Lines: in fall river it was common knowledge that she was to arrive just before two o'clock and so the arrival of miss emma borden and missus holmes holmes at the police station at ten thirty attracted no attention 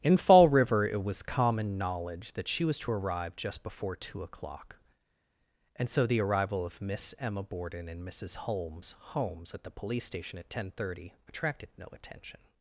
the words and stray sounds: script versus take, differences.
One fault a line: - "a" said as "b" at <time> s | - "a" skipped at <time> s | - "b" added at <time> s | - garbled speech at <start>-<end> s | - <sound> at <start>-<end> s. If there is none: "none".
none